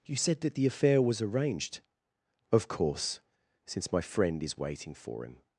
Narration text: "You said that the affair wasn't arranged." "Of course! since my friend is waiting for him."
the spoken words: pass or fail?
fail